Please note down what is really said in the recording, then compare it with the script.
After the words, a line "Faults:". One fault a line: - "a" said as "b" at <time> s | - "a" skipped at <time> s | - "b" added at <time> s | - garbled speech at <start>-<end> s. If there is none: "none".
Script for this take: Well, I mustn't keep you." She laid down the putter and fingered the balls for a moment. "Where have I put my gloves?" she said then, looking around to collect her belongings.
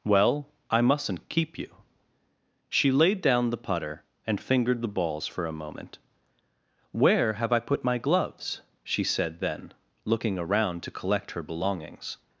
Well, I mustn't keep you." She laid down the putter and fingered the balls for a moment. "Where have I put my gloves?" she said then, looking around to collect her belongings.
Faults:
none